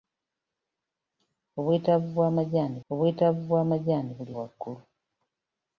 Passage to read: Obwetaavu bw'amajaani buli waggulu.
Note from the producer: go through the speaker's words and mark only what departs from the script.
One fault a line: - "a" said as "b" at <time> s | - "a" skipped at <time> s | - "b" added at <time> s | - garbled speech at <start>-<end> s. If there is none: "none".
- "obwetaavu bw'amajaani" added at 2.9 s